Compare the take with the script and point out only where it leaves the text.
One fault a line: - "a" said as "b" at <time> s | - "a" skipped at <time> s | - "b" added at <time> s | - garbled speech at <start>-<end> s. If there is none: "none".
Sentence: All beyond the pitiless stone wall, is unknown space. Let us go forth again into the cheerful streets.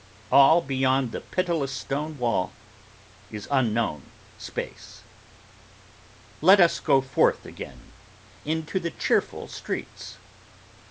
none